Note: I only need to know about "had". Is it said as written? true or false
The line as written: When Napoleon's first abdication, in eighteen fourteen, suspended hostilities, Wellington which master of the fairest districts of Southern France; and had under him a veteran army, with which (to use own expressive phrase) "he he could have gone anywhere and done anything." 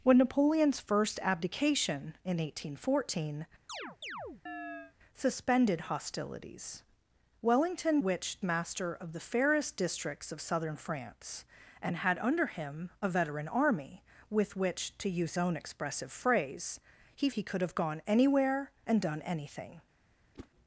true